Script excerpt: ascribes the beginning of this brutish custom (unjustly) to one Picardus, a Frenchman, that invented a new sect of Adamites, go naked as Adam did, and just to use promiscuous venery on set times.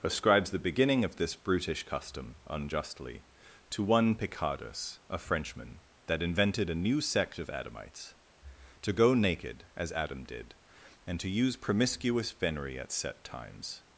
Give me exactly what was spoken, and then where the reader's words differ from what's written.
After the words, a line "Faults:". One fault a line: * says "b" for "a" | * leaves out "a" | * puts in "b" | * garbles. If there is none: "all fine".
ascribes the beginning of this brutish custom (unjustly) to one Picardus, a Frenchman, that invented a new sect of Adamites, to go naked as Adam did, and to use promiscuous venery at set times.
Faults:
* puts in "to"
* leaves out "just"
* says "at" for "on"